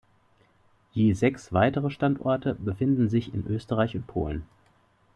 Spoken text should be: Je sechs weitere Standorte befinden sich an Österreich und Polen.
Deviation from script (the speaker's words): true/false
true